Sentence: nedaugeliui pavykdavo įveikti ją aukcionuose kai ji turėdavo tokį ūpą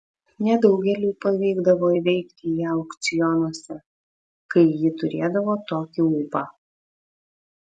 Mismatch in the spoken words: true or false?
false